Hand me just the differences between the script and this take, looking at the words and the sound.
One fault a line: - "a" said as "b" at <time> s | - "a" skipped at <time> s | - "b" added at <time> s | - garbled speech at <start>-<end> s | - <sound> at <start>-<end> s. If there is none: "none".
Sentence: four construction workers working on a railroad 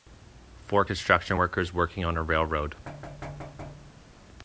- thud at 2.9-4.2 s